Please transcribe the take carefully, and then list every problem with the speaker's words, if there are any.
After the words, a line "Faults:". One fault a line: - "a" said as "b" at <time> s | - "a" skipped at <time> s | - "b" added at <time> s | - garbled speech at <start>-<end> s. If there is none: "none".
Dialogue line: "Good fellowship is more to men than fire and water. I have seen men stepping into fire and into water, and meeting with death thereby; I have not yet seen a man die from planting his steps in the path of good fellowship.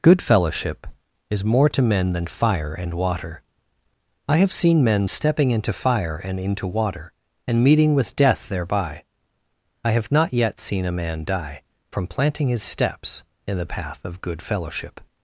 "Good fellowship is more to men than fire and water. I have seen men stepping into fire and into water, and meeting with death thereby; I have not yet seen a man die from planting his steps in the path of good fellowship.
Faults:
none